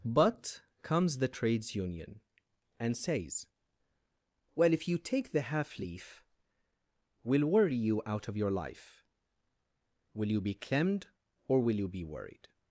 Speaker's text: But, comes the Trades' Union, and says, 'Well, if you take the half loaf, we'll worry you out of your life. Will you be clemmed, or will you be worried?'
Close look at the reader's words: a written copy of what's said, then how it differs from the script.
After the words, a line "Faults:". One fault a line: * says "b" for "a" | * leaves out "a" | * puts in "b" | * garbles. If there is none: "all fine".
But, comes the Trades' Union, and says, 'Well, if you take the half leaf, we'll worry you out of your life. Will you be clemmed, or will you be worried?'
Faults:
* says "leaf" for "loaf"